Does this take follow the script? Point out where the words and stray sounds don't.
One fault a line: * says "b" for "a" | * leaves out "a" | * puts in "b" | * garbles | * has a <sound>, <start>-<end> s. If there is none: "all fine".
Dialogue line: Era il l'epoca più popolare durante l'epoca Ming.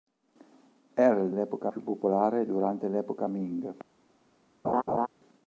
* has a laugh, 4.6-5.1 s